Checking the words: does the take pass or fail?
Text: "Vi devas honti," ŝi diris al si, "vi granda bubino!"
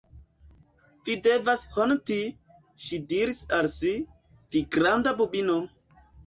pass